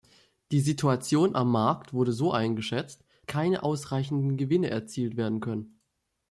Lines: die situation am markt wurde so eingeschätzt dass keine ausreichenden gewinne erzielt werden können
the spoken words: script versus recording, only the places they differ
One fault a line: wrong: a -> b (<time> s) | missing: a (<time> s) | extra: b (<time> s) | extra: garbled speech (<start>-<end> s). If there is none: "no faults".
missing: dass (3.0 s)